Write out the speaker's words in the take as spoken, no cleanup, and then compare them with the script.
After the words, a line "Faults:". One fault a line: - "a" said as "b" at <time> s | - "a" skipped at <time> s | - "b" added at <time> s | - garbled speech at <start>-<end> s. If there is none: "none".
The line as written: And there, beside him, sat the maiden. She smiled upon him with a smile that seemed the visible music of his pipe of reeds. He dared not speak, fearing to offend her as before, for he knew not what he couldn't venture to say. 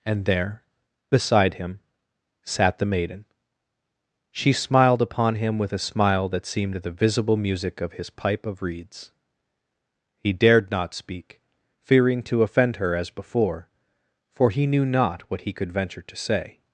And there, beside him, sat the maiden. She smiled upon him with a smile that seemed the visible music of his pipe of reeds. He dared not speak, fearing to offend her as before, for he knew not what he could venture to say.
Faults:
- "couldn't" said as "could" at 15.5 s